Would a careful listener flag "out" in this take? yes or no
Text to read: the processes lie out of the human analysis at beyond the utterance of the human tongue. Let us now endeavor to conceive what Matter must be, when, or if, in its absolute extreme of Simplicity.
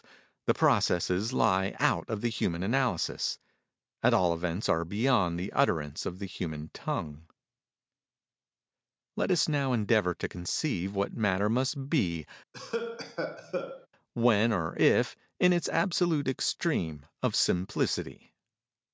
no